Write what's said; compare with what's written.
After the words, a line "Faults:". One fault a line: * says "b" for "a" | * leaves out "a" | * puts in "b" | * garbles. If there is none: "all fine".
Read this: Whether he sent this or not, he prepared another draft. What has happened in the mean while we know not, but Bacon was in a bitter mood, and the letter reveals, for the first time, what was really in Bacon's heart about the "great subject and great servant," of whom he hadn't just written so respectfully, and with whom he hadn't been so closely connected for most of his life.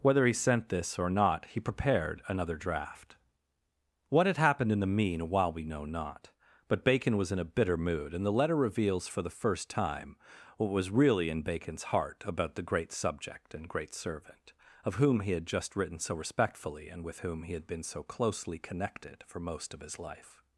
Whether he sent this or not, he prepared another draft. What had happened in the mean while we know not, but Bacon was in a bitter mood, and the letter reveals, for the first time, what was really in Bacon's heart about the "great subject and great servant," of whom he had just written so respectfully, and with whom he had been so closely connected for most of his life.
Faults:
* says "had" for "has"
* says "had" for "hadn't"
* says "had" for "hadn't"